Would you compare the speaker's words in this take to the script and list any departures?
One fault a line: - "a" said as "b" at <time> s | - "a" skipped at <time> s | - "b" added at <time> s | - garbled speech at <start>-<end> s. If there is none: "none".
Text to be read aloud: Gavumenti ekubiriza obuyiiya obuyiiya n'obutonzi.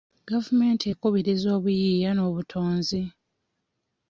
- "obuyiiya" skipped at 2.1 s